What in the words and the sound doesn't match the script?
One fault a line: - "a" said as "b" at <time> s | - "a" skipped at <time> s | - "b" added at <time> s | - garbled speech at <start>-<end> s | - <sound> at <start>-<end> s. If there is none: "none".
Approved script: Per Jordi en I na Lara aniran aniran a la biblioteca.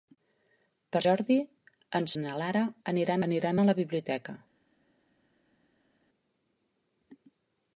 none